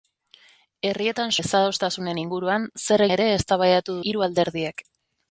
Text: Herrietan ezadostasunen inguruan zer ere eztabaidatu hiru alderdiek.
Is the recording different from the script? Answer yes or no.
no